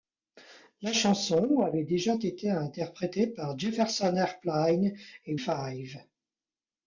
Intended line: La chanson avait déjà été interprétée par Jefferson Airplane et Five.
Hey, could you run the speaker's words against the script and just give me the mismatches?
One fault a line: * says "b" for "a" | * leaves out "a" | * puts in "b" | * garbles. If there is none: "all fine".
all fine